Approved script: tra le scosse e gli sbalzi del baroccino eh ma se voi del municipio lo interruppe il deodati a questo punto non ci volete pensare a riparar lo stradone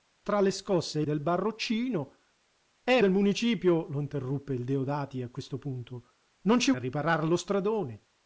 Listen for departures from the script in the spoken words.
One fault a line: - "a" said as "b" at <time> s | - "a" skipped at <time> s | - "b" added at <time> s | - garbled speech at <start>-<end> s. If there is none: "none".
- "gli sbalzi" skipped at 1.1 s
- "ma se voi" skipped at 3.0 s
- "volete pensare" skipped at 6.7 s